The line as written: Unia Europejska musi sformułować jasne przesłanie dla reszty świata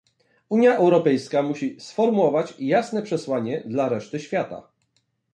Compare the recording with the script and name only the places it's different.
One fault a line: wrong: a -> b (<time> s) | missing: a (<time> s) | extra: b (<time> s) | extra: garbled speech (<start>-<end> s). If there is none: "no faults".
no faults